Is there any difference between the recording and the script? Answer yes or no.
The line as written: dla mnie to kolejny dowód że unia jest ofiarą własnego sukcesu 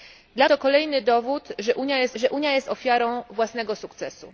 yes